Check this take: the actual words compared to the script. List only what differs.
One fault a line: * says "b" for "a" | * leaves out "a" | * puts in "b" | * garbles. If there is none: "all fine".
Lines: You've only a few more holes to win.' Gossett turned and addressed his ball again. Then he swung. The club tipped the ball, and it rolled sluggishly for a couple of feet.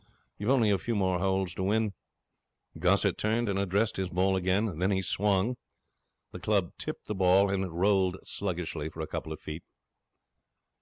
all fine